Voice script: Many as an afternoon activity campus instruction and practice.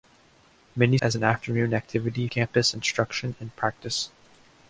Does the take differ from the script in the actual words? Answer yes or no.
no